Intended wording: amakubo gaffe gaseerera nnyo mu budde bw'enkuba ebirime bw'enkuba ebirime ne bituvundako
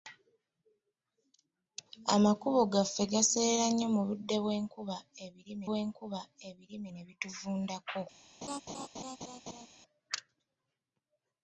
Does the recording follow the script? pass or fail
pass